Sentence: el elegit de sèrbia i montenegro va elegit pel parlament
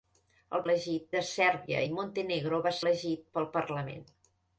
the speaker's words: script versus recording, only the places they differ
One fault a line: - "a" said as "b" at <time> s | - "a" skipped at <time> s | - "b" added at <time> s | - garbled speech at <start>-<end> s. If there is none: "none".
none